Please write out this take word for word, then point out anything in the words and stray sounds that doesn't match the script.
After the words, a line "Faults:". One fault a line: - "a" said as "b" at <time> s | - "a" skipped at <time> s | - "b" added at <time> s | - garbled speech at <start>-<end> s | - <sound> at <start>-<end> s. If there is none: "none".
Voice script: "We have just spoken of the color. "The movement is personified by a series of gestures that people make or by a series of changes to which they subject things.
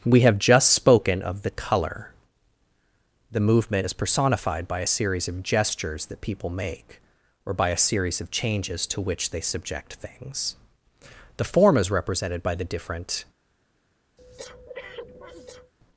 "We have just spoken of the color. "The movement is personified by a series of gestures that people make or by a series of changes to which they subject things. "The form is represented by the different
Faults:
- "The form is represented by the different" added at 11.4 s
- breath at 14.2-15.7 s